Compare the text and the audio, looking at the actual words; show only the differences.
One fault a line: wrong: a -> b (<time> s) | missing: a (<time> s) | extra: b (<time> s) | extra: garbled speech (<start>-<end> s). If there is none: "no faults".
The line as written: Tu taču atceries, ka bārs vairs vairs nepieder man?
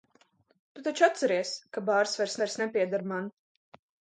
no faults